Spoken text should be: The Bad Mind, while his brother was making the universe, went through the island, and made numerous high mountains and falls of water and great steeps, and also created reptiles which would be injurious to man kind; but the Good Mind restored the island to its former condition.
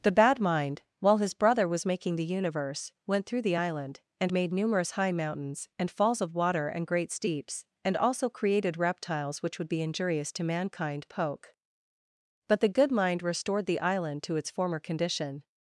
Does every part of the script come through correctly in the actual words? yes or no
no